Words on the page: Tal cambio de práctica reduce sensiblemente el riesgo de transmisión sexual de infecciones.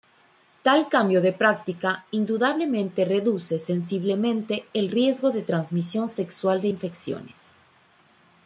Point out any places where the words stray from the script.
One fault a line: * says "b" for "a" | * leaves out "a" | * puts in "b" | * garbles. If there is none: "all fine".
* puts in "indudablemente"